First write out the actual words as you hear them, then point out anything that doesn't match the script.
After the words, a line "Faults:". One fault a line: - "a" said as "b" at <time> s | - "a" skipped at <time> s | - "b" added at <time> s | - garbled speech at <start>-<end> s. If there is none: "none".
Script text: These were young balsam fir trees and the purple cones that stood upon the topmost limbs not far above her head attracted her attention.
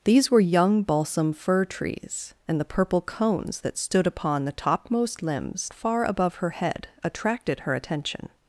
These were young balsam fir trees and the purple cones that stood upon the topmost limbs far above her head attracted her attention.
Faults:
- "not" skipped at 5.7 s